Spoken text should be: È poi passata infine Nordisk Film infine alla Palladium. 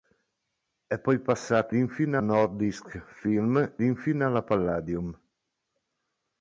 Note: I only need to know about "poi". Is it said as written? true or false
true